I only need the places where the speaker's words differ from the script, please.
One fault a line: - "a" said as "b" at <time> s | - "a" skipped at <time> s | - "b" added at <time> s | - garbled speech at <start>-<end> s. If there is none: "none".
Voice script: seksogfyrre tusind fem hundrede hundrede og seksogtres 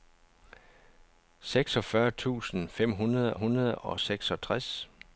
none